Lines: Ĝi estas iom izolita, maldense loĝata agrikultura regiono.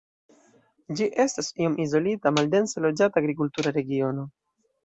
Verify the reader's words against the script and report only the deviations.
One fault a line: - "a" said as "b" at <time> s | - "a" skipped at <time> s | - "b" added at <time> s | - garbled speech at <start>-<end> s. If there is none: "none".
none